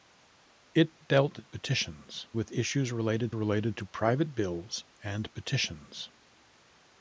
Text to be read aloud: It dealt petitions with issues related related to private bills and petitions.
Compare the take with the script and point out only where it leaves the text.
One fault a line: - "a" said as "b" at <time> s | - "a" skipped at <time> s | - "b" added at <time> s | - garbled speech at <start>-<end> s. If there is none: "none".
none